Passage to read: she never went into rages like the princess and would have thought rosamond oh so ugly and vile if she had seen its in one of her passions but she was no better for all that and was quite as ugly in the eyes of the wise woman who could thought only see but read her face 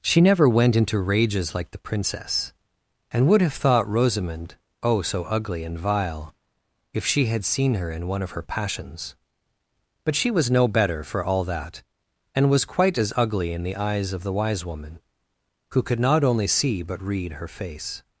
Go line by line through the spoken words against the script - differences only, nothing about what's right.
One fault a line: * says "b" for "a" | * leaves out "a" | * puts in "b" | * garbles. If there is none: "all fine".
* says "her" for "its"
* says "not" for "thought"